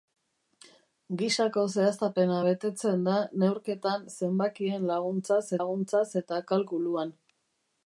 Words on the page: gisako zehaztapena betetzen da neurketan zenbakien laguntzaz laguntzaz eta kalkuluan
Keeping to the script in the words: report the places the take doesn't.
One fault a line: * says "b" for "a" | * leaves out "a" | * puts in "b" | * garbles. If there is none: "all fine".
all fine